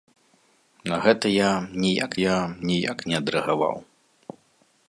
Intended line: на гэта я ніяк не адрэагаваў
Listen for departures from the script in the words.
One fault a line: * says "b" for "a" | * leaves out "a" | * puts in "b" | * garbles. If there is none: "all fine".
* puts in "я ніяк"